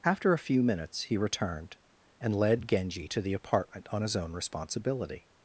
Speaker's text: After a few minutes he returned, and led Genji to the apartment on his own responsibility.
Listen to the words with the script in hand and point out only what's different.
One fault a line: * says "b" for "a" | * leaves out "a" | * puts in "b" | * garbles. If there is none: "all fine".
all fine